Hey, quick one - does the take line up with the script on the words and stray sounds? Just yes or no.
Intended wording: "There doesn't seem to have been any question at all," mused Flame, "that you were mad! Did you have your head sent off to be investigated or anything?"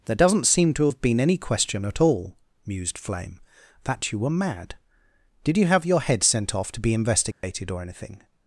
no